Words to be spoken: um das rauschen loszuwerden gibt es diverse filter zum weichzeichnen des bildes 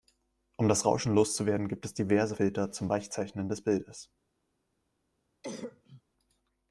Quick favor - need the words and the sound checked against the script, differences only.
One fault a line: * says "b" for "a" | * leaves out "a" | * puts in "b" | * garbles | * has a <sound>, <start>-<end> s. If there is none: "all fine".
* has a cough, 5.4-6.0 s